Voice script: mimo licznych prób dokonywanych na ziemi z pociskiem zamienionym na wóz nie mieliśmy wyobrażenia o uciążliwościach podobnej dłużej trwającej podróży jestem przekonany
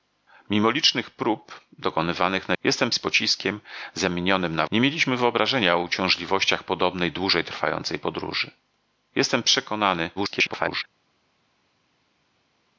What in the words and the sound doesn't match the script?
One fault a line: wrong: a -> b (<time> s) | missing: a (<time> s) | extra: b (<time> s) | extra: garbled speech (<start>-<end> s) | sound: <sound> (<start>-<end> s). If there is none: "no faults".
wrong: ziemi -> jestem (2.6 s)
missing: wóz (4.7 s)
extra: garbled speech (10.2-10.8 s)